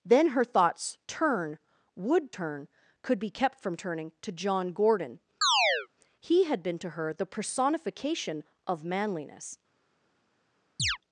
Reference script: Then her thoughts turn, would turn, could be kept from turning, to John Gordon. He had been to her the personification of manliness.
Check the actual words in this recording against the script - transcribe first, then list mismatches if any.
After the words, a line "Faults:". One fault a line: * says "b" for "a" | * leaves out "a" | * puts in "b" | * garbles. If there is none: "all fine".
Then her thoughts turn, would turn, could be kept from turning, to John Gordon. He had been to her the personification of manliness.
Faults:
all fine